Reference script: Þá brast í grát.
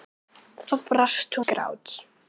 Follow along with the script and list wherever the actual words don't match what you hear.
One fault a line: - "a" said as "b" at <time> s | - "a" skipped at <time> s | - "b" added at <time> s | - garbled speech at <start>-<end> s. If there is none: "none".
none